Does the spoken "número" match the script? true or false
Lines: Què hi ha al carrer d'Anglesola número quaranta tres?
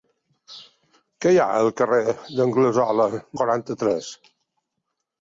false